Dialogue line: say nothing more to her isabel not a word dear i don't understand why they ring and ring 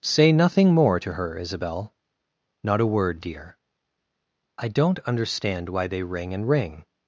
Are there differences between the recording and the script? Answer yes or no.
no